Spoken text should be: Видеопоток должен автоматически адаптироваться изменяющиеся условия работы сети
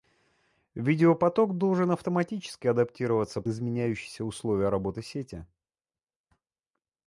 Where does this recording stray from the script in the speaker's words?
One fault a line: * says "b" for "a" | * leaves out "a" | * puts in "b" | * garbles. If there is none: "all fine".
all fine